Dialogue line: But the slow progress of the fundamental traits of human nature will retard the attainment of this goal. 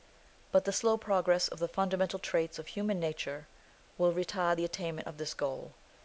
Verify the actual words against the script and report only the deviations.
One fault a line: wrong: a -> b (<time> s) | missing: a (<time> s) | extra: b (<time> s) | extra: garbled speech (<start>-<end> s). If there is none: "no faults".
no faults